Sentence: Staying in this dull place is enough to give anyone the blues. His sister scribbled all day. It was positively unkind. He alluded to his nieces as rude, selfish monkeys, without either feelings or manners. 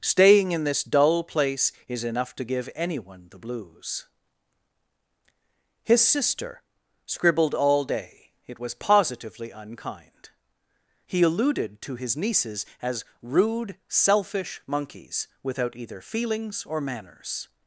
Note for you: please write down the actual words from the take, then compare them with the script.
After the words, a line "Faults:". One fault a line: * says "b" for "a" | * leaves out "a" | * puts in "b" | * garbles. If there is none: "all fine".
Staying in this dull place is enough to give anyone the blues. His sister scribbled all day. It was positively unkind. He alluded to his nieces as rude, selfish monkeys, without either feelings or manners.
Faults:
all fine